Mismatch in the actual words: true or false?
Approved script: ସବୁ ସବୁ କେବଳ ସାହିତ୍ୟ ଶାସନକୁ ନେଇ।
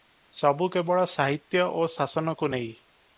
true